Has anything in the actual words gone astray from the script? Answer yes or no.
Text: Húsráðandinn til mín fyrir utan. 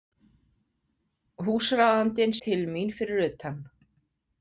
no